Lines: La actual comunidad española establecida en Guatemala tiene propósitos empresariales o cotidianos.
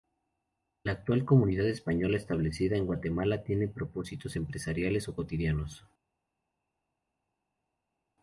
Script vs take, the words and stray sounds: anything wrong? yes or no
no